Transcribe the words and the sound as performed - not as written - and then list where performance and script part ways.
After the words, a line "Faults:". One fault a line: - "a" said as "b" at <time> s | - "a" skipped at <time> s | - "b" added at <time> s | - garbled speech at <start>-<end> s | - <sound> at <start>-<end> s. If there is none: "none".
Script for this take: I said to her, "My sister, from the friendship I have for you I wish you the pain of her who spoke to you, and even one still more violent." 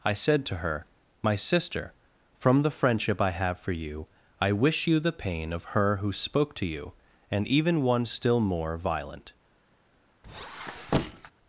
I said to her, "My sister, from the friendship I have for you I wish you the pain of her who spoke to you, and even one still more violent."
Faults:
- squeak at 10.2-11.3 s